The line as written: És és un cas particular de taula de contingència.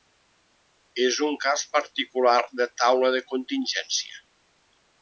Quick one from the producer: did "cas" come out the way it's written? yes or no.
yes